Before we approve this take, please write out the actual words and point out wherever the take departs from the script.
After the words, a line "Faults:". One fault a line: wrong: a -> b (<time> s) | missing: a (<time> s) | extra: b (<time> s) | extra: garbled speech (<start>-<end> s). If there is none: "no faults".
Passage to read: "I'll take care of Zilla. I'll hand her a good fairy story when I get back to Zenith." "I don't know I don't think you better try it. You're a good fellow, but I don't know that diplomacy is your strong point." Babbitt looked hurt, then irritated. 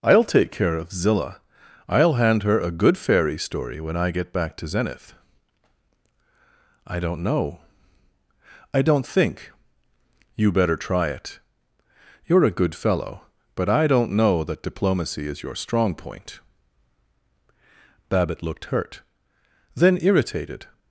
"I'll take care of Zilla. I'll hand her a good fairy story when I get back to Zenith." "I don't know I don't think you better try it. You're a good fellow, but I don't know that diplomacy is your strong point." Babbitt looked hurt, then irritated.
Faults:
no faults